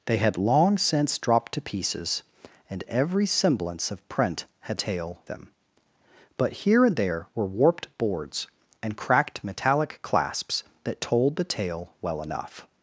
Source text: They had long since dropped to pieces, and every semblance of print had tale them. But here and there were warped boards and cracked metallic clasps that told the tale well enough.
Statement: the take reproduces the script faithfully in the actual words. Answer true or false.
true